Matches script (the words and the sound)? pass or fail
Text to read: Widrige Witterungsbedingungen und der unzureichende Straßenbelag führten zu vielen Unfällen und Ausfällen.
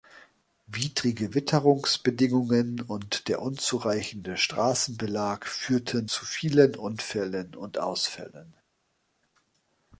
pass